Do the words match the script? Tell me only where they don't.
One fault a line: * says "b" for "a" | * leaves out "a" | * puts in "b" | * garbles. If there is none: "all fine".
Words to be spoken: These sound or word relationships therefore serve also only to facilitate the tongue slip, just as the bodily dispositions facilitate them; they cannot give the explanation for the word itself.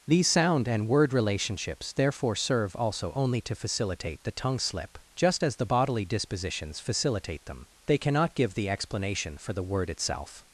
* says "and" for "or"